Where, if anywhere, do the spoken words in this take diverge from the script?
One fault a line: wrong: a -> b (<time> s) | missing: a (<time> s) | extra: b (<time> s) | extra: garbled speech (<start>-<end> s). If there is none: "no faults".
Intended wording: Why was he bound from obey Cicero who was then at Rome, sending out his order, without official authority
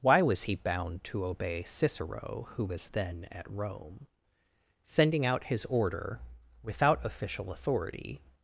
wrong: from -> to (1.1 s)